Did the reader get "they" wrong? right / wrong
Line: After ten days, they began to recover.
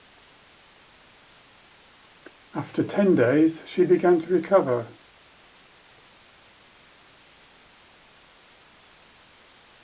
wrong